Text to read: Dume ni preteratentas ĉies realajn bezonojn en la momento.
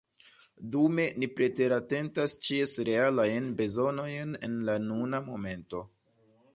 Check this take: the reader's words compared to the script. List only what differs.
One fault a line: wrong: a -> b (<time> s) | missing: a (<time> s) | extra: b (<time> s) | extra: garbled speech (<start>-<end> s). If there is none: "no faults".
extra: nuna (4.9 s)